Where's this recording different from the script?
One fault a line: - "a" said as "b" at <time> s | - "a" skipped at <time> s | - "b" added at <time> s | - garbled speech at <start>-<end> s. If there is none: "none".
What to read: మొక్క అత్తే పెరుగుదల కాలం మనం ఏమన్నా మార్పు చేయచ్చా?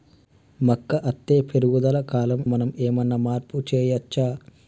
none